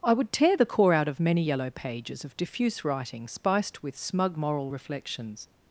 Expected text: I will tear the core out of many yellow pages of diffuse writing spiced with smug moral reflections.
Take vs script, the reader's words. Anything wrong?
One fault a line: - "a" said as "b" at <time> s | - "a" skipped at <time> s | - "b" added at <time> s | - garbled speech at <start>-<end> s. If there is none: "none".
- "will" said as "would" at 0.1 s